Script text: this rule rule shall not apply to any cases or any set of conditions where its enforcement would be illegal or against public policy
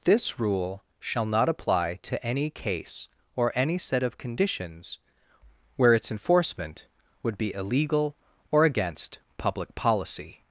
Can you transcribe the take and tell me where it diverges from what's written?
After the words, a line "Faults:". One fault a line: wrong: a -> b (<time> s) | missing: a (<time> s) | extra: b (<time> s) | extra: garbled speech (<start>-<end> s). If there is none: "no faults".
this rule shall not apply to any case or any set of conditions where its enforcement would be illegal or against public policy
Faults:
missing: rule (0.8 s)
wrong: cases -> case (2.5 s)